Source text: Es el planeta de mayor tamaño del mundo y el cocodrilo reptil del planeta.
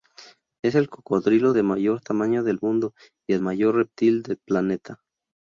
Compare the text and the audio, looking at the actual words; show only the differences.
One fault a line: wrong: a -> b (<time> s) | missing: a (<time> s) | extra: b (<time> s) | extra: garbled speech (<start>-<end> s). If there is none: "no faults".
wrong: planeta -> cocodrilo (0.9 s)
wrong: cocodrilo -> mayor (3.4 s)